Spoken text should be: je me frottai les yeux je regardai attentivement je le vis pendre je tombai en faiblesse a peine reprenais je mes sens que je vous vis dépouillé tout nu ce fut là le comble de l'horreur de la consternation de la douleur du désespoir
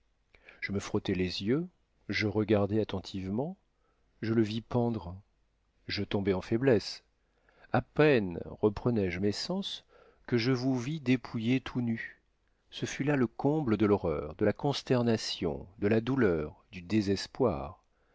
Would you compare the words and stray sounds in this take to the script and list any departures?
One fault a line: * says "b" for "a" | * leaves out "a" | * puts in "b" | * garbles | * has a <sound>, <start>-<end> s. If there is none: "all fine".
all fine